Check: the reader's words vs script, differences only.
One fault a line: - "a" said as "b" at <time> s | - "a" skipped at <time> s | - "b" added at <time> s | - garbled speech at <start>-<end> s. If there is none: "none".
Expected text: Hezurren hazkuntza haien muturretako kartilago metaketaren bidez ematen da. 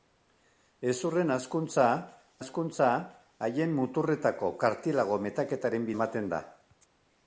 - "hazkuntza" added at 2.4 s
- "bidez" skipped at 5.9 s